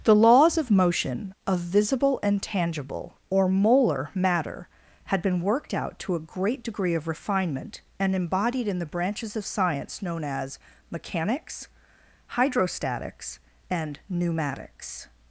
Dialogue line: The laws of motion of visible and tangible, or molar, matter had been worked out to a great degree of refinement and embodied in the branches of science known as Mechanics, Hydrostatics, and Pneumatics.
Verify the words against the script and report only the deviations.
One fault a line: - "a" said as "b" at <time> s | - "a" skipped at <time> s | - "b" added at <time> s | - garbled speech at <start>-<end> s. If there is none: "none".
none